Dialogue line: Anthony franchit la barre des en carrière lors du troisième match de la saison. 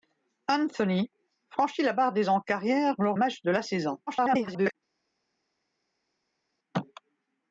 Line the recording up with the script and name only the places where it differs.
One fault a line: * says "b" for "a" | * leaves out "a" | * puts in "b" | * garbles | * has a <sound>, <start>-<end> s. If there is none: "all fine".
* leaves out "du troisième"
* garbles